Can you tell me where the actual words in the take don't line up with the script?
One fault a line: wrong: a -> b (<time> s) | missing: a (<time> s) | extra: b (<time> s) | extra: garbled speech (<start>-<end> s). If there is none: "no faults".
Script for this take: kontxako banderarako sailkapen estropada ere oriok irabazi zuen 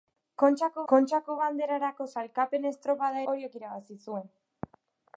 extra: kontxako (0.9 s)
missing: ere (3.2 s)